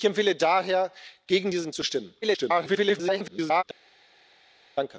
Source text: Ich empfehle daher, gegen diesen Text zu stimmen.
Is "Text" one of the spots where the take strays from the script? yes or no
yes